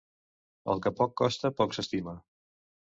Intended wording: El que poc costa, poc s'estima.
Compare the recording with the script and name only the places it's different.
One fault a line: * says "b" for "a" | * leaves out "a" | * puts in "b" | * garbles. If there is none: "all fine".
all fine